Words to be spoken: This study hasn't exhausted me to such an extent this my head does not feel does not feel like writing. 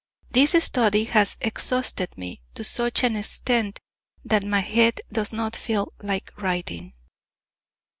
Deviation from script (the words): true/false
true